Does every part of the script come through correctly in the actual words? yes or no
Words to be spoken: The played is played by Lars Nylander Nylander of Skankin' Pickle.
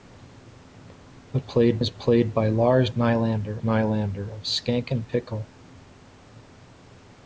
yes